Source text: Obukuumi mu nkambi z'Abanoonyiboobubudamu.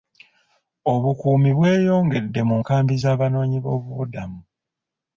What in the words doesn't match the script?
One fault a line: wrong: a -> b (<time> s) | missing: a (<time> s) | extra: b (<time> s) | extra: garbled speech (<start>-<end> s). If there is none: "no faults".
extra: bweyongedde (1.6 s)